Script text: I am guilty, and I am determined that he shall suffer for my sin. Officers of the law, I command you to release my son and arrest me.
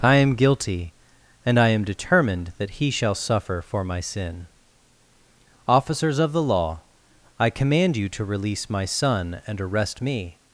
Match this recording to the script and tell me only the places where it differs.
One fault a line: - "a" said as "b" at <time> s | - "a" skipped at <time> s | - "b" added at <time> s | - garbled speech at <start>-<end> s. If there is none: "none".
none